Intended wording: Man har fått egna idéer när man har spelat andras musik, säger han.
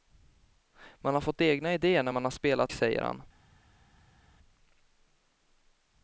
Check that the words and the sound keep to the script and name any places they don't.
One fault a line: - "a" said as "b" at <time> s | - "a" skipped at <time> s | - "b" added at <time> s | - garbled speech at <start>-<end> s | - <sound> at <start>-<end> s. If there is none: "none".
- "andras musik" skipped at 2.7 s